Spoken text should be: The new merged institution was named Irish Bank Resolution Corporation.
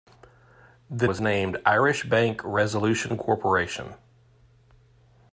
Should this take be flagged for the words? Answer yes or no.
yes